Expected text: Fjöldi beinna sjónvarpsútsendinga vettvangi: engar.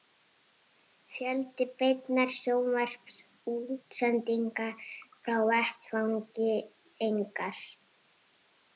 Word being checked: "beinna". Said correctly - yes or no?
yes